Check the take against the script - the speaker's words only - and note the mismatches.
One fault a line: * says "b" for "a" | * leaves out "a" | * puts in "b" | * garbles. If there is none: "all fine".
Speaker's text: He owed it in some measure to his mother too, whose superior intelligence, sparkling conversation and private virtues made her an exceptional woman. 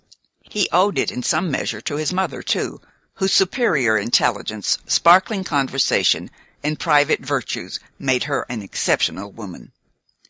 all fine